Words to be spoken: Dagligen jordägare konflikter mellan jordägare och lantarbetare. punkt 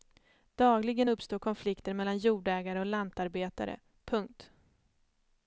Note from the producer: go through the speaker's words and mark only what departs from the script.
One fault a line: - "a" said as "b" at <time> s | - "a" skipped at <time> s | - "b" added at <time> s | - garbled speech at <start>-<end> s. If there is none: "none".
- "jordägare" said as "uppstår" at 1.1 s